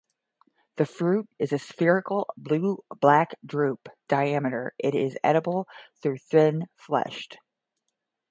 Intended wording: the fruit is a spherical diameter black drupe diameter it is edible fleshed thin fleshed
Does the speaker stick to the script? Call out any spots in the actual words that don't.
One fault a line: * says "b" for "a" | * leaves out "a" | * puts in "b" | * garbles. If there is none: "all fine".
* says "blue" for "diameter"
* says "though" for "fleshed"